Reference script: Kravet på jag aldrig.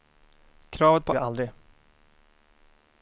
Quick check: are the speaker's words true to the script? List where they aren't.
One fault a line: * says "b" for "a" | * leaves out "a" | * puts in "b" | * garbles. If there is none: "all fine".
all fine